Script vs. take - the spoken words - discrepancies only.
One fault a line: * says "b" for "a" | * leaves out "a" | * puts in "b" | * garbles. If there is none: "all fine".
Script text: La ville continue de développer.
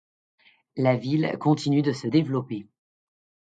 * puts in "se"